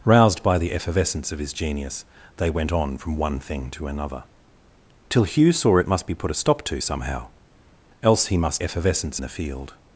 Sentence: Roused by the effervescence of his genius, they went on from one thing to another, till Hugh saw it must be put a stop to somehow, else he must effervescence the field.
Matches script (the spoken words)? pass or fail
pass